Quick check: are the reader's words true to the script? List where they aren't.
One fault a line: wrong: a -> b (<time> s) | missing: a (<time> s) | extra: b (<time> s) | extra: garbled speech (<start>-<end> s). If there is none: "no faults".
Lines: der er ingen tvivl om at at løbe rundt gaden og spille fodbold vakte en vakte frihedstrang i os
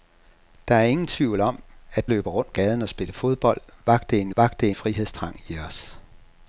no faults